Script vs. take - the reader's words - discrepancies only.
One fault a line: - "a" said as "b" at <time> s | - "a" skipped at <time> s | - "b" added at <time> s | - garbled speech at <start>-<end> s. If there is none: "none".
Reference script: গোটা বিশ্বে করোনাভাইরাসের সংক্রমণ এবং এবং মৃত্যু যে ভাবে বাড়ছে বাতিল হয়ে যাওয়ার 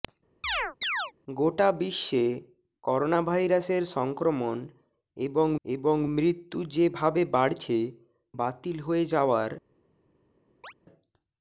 none